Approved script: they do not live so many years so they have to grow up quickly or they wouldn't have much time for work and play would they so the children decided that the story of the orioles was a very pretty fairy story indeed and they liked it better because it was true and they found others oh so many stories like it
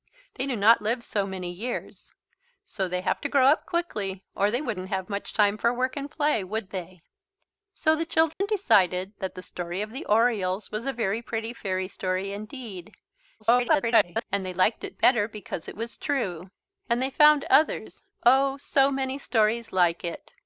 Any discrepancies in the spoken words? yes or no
yes